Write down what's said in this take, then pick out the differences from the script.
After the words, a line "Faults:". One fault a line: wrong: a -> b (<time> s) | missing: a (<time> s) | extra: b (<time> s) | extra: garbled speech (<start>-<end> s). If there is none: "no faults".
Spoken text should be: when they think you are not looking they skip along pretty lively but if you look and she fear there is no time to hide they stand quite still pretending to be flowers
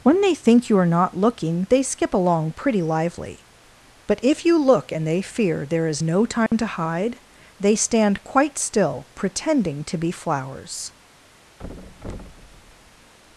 when they think you are not looking they skip along pretty lively but if you look and they fear there is no time to hide they stand quite still pretending to be flowers
Faults:
wrong: she -> they (5.0 s)